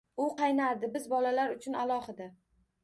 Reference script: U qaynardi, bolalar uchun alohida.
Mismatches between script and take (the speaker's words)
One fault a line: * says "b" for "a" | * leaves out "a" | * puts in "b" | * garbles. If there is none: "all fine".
* puts in "biz"